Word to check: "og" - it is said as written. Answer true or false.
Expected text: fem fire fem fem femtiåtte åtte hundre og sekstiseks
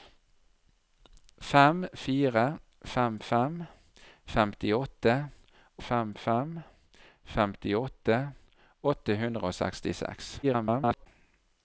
true